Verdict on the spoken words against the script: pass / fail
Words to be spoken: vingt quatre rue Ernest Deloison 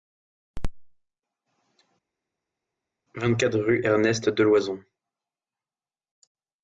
pass